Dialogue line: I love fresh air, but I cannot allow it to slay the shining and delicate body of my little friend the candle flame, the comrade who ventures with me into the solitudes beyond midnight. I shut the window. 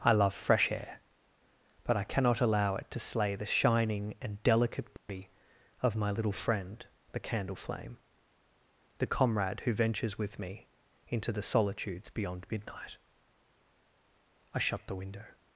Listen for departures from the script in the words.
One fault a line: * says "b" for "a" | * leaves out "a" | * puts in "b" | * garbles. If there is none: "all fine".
all fine